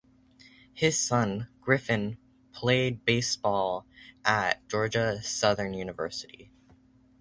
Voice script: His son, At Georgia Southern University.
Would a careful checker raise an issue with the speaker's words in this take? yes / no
yes